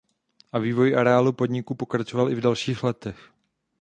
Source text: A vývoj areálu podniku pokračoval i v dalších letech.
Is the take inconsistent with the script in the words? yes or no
no